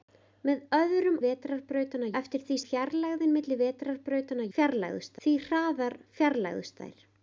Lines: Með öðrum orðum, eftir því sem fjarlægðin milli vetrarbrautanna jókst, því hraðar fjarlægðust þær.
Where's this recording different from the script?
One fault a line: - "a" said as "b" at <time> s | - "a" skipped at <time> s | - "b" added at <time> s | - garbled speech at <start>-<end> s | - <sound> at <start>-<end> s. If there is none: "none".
- "orðum" said as "vetrarbrautanna" at 1.2 s
- "sem" skipped at 2.6 s
- "jókst" said as "fjarlægðust" at 4.6 s